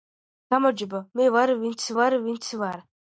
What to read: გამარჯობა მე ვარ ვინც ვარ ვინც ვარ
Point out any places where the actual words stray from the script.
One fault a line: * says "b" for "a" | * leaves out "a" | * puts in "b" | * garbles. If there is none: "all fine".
all fine